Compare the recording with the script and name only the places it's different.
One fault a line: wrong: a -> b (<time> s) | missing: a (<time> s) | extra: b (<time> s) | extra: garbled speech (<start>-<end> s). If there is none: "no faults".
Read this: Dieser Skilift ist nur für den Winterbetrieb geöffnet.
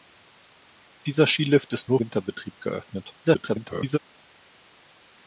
missing: für den (2.0 s)
extra: garbled speech (3.2-4.0 s)